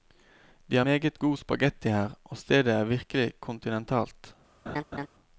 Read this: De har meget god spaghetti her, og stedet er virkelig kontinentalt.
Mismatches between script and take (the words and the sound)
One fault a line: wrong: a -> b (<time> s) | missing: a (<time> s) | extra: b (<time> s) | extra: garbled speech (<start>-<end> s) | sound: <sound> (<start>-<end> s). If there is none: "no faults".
sound: laugh (4.7-5.1 s)